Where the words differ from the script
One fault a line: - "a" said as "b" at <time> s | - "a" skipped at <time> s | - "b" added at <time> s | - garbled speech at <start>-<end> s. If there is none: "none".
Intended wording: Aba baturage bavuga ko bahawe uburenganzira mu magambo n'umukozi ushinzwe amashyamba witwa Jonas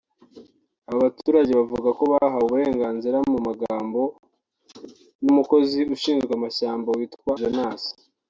none